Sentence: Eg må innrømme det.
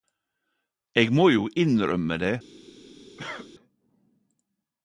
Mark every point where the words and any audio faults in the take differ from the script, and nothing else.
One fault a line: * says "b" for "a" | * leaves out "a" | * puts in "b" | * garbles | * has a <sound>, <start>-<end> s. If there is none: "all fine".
* puts in "jo"
* has a cough, 3.2-3.5 s